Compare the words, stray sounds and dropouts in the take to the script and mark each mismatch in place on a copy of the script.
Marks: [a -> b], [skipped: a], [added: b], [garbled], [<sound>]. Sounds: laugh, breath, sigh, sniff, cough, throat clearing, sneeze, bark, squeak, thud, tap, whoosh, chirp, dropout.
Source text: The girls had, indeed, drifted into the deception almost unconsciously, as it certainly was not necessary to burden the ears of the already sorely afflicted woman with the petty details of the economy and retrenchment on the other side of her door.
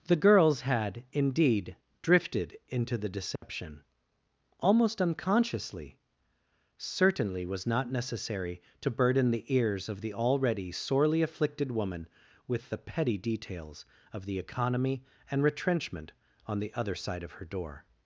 The girls had, indeed, drifted into the deception [dropout] almost unconsciously, [skipped: as it] certainly was not necessary to burden the ears of the already sorely afflicted woman with the petty details of the economy and retrenchment on the other side of her door.